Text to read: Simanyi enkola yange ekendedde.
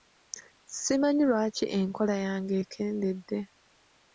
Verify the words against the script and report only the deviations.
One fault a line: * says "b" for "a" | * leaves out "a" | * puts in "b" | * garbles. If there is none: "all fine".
* puts in "lwaki"